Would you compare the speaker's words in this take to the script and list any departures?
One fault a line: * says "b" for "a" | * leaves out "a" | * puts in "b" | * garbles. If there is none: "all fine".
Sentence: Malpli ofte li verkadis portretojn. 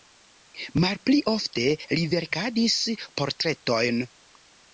all fine